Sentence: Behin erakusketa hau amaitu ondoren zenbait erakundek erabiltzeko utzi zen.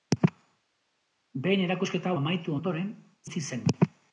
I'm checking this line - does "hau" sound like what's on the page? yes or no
no